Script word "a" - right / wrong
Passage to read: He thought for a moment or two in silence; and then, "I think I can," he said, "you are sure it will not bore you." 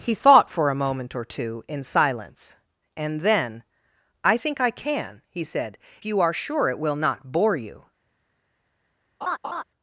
right